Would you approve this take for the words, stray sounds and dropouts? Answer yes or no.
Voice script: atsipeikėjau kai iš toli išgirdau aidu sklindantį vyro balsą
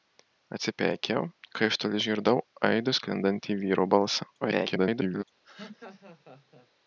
no